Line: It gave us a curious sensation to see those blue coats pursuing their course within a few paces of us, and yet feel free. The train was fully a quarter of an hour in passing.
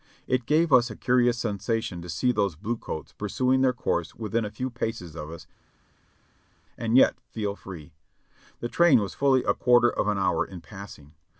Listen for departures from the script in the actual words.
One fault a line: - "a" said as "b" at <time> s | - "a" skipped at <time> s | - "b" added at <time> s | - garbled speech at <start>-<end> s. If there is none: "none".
none